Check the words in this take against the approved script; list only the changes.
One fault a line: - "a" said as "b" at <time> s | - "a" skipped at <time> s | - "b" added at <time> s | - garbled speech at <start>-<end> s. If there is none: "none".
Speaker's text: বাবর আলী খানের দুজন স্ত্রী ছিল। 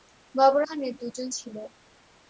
- "আলী" skipped at 0.6 s
- "স্ত্রী" skipped at 1.3 s